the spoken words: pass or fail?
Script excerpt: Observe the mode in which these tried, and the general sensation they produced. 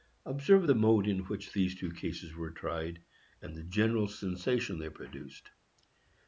fail